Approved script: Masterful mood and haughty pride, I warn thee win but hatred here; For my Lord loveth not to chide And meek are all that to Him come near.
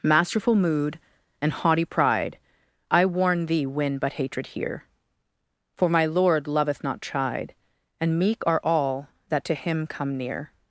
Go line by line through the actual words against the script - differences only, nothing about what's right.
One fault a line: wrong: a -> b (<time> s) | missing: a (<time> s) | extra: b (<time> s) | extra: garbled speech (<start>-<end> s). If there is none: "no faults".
missing: to (7.0 s)